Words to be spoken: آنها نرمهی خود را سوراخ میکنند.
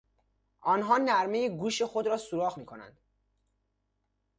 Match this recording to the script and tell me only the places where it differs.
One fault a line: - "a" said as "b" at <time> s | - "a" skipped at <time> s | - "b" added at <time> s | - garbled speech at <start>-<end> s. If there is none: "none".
- "گوش" added at 1.5 s